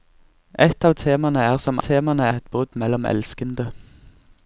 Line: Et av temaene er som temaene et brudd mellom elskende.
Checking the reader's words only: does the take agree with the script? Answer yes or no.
yes